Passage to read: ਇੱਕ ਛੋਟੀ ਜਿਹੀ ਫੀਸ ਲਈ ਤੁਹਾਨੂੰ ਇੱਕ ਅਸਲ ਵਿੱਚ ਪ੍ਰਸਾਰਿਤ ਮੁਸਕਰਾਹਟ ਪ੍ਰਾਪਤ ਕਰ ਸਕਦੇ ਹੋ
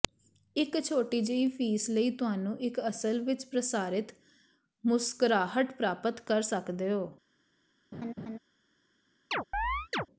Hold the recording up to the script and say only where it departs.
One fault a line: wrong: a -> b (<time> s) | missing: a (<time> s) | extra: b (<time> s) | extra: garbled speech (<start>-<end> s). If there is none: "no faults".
no faults